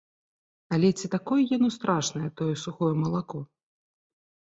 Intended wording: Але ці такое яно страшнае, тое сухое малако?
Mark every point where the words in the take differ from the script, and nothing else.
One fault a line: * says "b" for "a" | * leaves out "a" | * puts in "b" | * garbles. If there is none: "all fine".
all fine